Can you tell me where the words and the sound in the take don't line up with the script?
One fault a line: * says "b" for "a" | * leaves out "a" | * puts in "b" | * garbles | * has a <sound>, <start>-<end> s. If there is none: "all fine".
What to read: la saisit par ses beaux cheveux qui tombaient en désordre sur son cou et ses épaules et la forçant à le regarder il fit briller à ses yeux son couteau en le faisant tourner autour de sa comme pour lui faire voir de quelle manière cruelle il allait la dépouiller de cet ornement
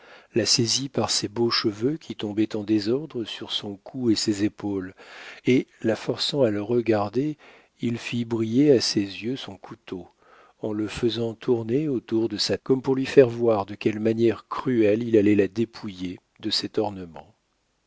all fine